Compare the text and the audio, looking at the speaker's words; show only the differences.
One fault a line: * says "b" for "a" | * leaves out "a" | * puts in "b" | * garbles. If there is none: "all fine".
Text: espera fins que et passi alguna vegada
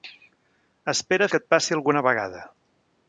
* leaves out "fins"